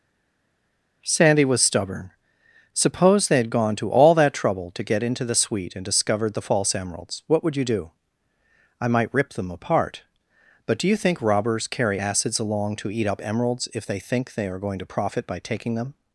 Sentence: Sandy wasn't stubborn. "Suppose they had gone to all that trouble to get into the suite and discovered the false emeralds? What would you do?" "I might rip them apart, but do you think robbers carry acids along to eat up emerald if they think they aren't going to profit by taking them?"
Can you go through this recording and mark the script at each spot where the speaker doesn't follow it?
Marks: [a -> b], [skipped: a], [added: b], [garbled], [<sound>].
Sandy [wasn't -> was] stubborn. "Suppose they had gone to all that trouble to get into the suite and discovered the false emeralds? What would you do?" "I might rip them apart, but do you think robbers carry acids along to eat up [emerald -> emeralds] if they think they [aren't -> are] going to profit by taking them?"